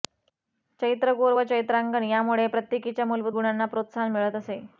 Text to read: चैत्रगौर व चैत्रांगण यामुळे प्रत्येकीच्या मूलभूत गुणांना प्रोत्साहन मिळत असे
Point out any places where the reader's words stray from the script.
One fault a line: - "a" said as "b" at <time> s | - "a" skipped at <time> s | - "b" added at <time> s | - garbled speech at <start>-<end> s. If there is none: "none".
none